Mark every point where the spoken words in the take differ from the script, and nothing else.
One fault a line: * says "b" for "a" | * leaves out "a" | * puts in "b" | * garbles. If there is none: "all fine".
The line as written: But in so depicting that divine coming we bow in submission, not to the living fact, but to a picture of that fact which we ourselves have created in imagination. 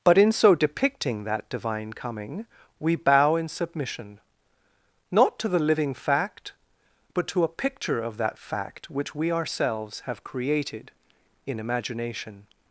all fine